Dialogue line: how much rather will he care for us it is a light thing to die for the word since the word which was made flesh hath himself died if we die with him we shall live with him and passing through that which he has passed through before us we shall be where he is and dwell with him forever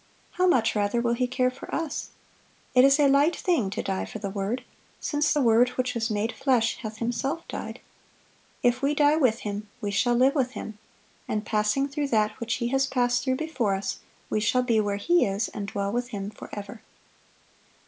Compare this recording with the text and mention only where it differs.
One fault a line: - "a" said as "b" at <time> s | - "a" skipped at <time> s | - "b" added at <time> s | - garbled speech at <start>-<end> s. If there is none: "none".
none